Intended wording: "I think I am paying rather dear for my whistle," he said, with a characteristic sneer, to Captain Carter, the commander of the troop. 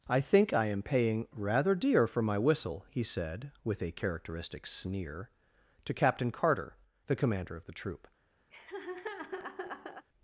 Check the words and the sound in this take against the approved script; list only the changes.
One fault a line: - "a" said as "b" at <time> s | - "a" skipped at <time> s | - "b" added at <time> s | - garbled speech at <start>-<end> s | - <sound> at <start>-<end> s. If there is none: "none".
- laugh at 8.5-10.1 s